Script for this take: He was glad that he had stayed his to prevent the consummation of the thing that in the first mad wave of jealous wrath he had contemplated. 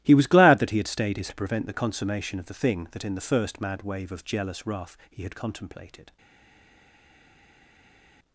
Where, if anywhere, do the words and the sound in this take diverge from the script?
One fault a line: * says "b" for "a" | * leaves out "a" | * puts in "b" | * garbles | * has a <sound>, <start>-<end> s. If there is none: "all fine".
all fine